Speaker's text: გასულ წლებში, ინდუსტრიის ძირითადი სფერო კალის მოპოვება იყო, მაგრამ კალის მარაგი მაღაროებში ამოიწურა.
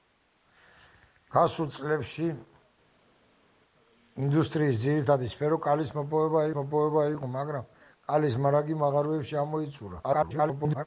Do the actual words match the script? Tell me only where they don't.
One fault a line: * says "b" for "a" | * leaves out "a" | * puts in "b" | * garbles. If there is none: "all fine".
* puts in "მოპოვება"
* garbles